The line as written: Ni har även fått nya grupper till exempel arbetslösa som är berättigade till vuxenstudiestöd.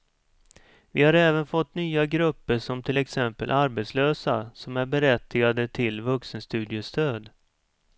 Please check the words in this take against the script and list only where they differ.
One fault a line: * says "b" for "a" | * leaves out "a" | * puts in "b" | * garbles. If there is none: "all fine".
* says "Vi" for "Ni"
* puts in "som"